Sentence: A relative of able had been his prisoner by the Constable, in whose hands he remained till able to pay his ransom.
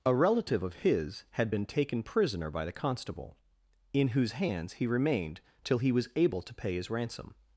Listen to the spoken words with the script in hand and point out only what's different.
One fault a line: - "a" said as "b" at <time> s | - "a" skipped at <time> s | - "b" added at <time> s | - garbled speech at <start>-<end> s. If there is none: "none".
- "able" said as "his" at 0.8 s
- "his" said as "taken" at 1.7 s
- "he was" added at 5.8 s